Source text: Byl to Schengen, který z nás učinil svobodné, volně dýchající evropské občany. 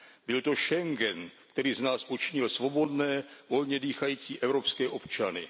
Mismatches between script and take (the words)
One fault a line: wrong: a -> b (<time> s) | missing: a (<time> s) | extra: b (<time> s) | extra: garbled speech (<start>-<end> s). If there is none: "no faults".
no faults